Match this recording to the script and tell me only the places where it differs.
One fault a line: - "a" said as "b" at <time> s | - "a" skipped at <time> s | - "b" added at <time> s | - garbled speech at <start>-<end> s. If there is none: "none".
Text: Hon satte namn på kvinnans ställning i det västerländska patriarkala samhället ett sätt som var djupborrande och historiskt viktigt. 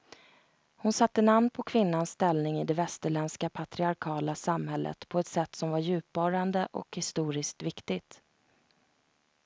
- "på" added at 5.1 s